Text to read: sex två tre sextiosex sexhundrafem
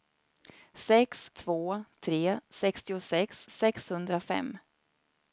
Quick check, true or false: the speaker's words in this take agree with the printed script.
true